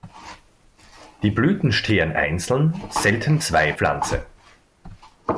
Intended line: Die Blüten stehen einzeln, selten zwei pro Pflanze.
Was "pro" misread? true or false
true